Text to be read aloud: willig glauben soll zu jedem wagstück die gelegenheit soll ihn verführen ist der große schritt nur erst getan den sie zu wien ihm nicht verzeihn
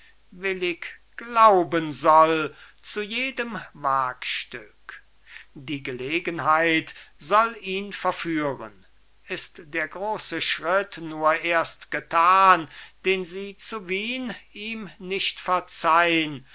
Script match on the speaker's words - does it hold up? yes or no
yes